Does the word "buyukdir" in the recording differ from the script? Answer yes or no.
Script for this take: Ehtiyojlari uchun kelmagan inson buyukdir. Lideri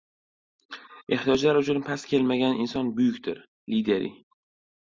no